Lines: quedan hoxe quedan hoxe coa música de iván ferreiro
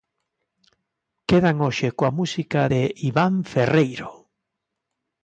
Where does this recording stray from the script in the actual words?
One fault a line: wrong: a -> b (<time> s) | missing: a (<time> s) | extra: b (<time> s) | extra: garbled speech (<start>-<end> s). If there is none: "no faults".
missing: quedan hoxe (1.9 s)